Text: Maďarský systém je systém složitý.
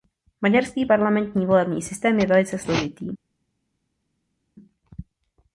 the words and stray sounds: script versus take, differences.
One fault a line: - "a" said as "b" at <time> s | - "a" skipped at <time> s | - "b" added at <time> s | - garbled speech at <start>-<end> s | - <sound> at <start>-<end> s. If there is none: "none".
- "parlamentní volební" added at 0.8 s
- "systém" said as "velice" at 2.3 s